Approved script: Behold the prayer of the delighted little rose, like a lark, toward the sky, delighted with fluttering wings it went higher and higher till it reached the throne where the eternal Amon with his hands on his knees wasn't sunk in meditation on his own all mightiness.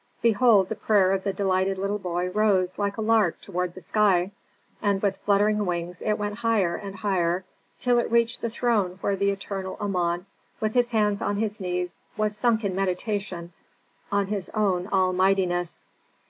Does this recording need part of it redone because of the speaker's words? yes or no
yes